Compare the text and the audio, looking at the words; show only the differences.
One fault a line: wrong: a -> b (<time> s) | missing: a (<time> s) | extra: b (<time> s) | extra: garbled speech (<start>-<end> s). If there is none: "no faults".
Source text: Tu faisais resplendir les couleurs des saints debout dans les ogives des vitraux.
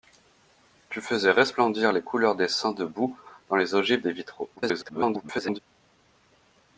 extra: garbled speech (4.6-5.6 s)